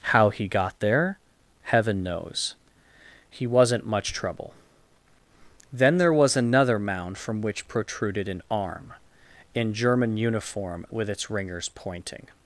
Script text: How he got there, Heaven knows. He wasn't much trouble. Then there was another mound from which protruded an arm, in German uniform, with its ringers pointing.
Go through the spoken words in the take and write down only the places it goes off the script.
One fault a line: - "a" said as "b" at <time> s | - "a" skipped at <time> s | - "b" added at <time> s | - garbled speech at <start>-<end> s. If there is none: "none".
none